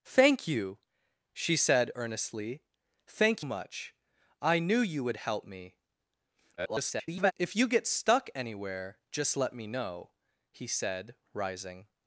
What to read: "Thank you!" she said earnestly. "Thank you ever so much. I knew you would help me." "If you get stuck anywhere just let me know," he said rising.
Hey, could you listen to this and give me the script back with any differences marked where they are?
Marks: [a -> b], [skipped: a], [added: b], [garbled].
"Thank you!" she said earnestly. "Thank [skipped: you ever so] much. I knew you would help me." [garbled] "If you get stuck anywhere just let me know," he said rising.